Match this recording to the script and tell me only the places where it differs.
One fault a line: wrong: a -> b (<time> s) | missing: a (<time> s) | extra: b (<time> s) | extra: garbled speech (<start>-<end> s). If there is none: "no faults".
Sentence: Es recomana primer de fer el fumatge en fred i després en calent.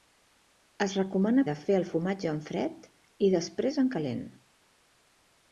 missing: primer (1.4 s)